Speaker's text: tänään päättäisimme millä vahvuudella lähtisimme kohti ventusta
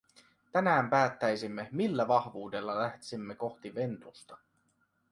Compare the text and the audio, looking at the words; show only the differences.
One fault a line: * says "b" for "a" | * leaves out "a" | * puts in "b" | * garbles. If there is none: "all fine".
all fine